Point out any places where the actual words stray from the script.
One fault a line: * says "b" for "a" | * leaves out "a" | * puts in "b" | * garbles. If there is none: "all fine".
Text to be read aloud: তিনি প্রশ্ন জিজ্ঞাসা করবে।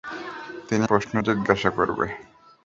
all fine